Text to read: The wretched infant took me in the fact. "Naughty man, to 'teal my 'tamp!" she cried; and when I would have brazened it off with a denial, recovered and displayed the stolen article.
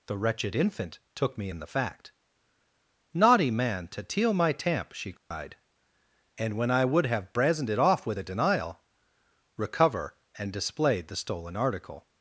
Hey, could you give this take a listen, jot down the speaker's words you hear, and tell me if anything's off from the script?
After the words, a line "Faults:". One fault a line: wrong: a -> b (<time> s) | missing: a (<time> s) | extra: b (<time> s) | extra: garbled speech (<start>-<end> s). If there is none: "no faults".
The wretched infant took me in the fact. "Naughty man, to 'teal my 'tamp!" she cried; and when I would have brazened it off with a denial, recover and displayed the stolen article.
Faults:
wrong: recovered -> recover (9.6 s)